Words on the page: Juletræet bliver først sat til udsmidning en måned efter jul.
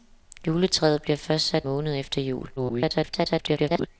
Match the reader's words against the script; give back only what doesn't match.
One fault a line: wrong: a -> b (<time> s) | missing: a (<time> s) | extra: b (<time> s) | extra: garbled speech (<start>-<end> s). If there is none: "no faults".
missing: til udsmidning en (1.6 s)
extra: garbled speech (2.6-3.9 s)